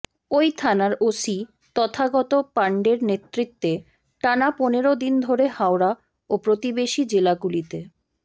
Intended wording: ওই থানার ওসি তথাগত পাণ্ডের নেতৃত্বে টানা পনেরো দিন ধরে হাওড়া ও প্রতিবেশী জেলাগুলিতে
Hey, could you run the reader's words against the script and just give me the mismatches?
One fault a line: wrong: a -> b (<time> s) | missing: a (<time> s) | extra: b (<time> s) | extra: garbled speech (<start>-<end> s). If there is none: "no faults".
no faults